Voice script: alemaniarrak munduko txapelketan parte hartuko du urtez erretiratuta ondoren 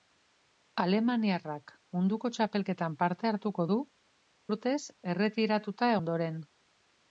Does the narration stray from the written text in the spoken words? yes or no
no